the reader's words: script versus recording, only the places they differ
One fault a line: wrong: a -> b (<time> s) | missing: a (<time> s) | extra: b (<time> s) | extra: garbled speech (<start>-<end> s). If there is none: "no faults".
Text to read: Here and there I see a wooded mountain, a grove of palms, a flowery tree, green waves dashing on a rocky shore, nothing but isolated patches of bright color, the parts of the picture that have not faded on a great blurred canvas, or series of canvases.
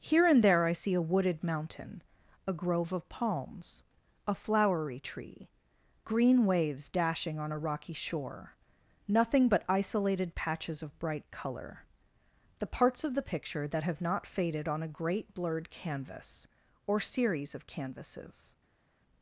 no faults